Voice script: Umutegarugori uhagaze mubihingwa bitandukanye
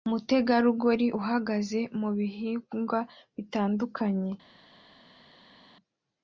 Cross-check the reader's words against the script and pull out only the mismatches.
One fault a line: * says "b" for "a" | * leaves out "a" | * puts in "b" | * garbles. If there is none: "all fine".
all fine